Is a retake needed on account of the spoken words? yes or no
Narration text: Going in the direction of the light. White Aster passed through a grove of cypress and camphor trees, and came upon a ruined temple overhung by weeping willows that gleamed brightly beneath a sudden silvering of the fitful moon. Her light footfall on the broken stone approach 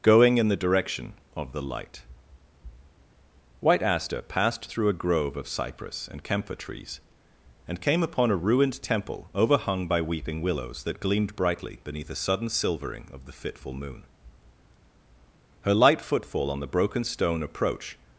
no